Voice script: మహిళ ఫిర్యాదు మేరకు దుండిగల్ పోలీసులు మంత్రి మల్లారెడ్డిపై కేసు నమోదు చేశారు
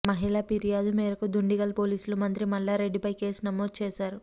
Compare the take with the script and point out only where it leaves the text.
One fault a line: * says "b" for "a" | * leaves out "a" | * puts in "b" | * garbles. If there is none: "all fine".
all fine